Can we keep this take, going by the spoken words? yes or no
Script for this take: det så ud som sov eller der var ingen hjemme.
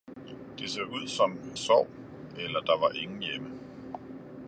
yes